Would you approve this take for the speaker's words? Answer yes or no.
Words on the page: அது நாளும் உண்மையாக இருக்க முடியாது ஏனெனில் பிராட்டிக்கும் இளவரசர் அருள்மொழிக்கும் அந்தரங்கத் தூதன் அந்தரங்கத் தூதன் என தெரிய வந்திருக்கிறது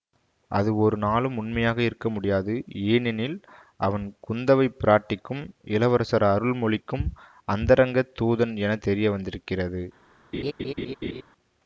no